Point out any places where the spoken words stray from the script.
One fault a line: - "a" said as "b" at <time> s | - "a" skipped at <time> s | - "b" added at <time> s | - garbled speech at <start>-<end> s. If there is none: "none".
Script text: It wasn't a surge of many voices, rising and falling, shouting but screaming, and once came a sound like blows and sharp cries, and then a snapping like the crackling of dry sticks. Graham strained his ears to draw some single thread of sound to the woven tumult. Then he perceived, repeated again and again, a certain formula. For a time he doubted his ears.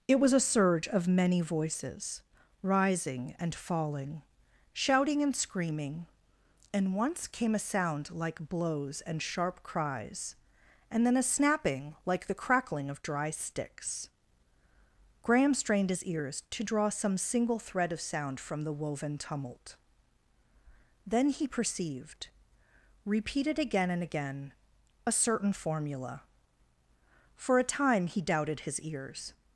- "wasn't" said as "was" at 0.2 s
- "but" said as "and" at 5.2 s
- "to" said as "from" at 18.4 s